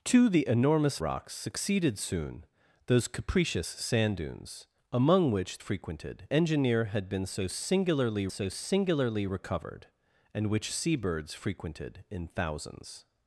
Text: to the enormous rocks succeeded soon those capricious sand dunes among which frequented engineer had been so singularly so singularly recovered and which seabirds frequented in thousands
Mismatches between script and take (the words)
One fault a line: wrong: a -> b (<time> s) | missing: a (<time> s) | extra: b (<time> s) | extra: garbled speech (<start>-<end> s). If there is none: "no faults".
no faults